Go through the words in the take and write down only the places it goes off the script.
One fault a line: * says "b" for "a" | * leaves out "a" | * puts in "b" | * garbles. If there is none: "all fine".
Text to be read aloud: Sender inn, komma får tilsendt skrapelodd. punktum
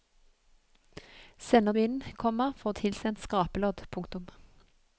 all fine